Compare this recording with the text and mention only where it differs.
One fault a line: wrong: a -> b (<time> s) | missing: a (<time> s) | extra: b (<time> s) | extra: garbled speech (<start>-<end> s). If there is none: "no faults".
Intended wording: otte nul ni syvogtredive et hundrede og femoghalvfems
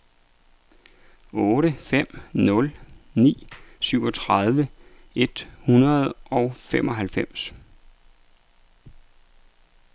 extra: fem (1.9 s)